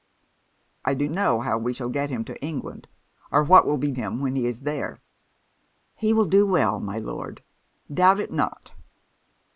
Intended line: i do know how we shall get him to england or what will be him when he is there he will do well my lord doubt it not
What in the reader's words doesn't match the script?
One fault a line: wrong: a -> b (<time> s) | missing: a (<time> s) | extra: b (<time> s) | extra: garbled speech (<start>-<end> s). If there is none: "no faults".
no faults